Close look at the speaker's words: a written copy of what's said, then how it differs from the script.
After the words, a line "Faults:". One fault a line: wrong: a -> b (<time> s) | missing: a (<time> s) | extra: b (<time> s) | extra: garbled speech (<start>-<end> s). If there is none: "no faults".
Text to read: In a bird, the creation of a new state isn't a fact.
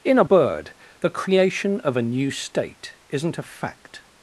In a bird, the creation of a new state isn't a fact.
Faults:
no faults